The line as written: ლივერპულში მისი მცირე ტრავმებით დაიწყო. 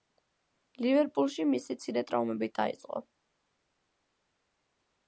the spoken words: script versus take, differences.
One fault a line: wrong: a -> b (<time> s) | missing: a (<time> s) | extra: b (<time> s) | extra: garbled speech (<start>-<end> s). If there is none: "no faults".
no faults